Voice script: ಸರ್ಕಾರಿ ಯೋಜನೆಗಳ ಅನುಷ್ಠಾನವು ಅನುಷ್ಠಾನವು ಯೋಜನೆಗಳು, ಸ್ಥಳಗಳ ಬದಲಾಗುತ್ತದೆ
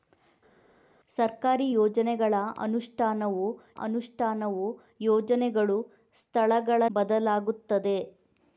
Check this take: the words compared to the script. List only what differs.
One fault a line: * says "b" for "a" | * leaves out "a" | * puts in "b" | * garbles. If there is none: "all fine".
all fine